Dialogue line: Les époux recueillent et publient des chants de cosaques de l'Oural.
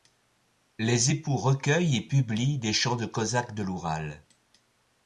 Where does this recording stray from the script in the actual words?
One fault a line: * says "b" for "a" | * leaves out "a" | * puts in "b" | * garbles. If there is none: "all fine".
all fine